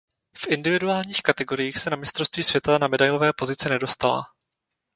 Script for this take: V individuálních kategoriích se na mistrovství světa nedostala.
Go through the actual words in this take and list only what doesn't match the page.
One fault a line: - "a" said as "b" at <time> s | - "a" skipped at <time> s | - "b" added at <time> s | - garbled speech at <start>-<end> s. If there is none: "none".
- "na medailové pozice" added at 2.8 s